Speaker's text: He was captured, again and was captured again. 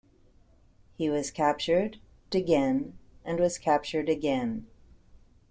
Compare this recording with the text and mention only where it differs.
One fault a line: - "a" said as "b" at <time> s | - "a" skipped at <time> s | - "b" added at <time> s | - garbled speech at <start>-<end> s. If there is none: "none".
none